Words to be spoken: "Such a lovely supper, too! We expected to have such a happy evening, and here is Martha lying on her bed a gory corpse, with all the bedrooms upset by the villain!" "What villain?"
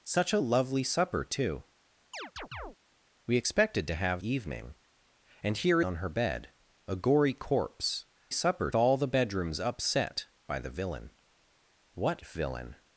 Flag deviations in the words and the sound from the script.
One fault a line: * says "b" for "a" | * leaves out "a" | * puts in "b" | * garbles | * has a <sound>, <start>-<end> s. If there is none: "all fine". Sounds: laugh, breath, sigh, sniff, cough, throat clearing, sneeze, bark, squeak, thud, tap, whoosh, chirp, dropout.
* has a chirp, 2.1-2.8 s
* leaves out "such a happy"
* leaves out "is Martha lying"
* says "supper" for "with"